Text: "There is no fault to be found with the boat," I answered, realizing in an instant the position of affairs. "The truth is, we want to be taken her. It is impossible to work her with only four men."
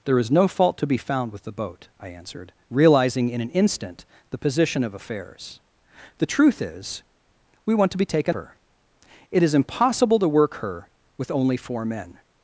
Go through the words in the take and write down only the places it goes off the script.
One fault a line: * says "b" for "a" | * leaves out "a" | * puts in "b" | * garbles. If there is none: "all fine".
all fine